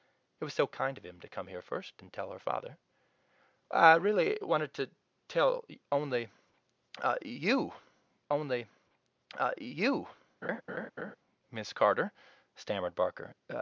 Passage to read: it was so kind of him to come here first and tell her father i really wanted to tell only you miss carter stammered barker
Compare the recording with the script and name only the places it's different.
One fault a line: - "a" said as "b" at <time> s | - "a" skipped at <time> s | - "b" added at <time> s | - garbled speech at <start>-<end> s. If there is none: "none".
- "only you" added at 8.3 s